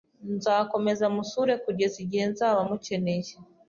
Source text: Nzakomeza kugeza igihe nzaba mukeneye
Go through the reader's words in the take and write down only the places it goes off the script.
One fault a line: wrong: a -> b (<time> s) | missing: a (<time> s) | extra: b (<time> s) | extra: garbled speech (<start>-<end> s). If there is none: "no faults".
extra: musure (1.1 s)